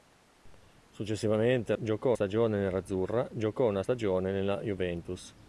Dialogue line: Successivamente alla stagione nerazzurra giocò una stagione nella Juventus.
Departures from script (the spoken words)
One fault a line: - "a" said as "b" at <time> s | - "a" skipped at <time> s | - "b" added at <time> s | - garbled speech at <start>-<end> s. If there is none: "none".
- "alla" said as "giocò" at 1.8 s